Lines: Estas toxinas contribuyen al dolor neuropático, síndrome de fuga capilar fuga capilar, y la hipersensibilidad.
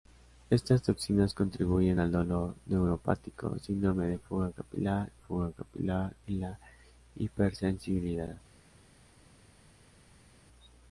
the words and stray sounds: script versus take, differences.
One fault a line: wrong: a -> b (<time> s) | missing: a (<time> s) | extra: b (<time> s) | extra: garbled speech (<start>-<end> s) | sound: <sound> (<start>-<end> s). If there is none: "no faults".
no faults